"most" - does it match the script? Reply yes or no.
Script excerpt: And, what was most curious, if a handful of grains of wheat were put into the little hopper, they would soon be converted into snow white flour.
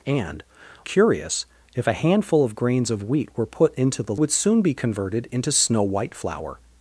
no